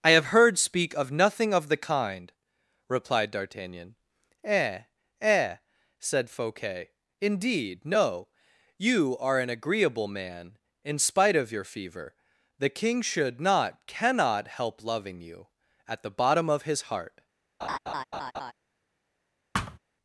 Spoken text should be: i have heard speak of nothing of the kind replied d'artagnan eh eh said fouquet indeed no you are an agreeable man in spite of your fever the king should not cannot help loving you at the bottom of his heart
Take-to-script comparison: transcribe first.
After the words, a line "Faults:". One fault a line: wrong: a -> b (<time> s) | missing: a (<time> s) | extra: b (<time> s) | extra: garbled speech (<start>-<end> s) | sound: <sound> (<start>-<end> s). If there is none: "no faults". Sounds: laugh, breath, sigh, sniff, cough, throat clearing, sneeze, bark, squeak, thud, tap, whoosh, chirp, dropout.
i have heard speak of nothing of the kind replied d'artagnan eh eh said fouquet indeed no you are an agreeable man in spite of your fever the king should not cannot help loving you at the bottom of his heart
Faults:
sound: laugh (17.6-18.5 s)
sound: thud (19.5-19.8 s)